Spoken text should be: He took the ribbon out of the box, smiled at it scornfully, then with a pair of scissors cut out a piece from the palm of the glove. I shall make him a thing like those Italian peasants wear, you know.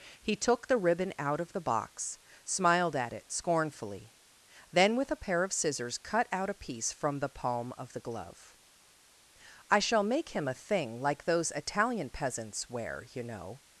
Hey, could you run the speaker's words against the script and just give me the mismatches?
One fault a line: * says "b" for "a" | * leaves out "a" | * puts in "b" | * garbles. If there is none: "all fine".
all fine